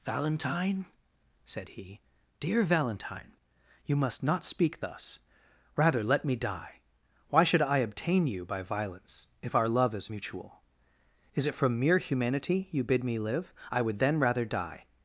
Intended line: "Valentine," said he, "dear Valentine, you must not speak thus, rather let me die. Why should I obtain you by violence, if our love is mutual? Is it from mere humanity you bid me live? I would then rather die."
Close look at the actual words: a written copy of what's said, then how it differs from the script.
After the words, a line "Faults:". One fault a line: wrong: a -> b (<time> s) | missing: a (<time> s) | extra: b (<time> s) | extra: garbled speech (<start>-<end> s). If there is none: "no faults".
"Valentine," said he, "dear Valentine, you must not speak thus, rather let me die. Why should I obtain you by violence, if our love is mutual? Is it from mere humanity you bid me live? I would then rather die."
Faults:
no faults